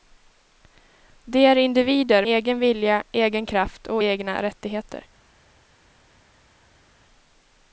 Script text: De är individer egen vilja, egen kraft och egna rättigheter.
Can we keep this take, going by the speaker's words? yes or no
yes